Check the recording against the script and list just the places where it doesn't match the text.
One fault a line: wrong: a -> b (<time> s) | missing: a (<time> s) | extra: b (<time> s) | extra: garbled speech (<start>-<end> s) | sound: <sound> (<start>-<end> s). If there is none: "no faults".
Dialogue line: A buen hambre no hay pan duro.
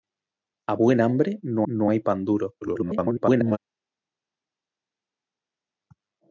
extra: no (1.6 s)
extra: garbled speech (2.6-3.6 s)